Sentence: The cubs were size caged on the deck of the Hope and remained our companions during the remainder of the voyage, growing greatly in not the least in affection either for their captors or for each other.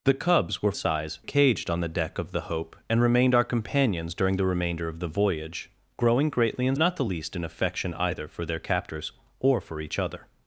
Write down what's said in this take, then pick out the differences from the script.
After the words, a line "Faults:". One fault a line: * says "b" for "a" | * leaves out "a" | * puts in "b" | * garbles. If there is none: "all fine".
The cubs were size caged on the deck of the Hope and remained our companions during the remainder of the voyage, growing greatly in not the least in affection either for their captors or for each other.
Faults:
all fine